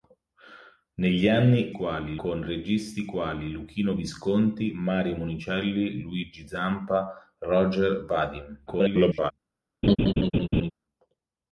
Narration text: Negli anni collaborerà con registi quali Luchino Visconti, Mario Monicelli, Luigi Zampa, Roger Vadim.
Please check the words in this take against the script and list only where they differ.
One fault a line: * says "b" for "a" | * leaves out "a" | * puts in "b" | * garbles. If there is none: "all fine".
* says "quali" for "collaborerà"
* garbles